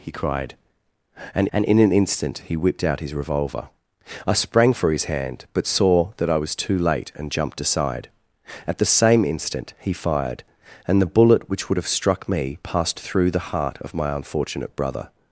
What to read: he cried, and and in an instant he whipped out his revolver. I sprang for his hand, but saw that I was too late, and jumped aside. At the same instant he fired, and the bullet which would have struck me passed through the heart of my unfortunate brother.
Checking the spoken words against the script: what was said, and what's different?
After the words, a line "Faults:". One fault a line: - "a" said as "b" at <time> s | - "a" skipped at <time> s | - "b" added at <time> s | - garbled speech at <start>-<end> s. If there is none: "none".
he cried, and and in an instant he whipped out his revolver. I sprang for his hand, but saw that I was too late, and jumped aside. At the same instant he fired, and the bullet which would have struck me passed through the heart of my unfortunate brother.
Faults:
none